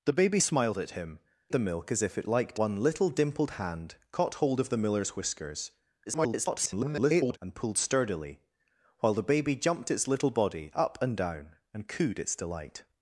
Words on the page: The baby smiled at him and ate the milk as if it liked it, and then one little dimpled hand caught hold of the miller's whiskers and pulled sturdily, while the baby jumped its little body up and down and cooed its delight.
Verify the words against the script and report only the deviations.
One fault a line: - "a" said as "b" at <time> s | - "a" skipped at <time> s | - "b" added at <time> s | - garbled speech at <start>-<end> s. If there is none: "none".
- "and ate" skipped at 1.2 s
- "it and then" skipped at 2.6 s
- garbled speech at 6.1-7.4 s